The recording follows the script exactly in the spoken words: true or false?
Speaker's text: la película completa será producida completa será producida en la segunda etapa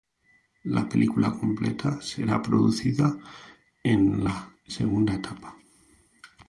false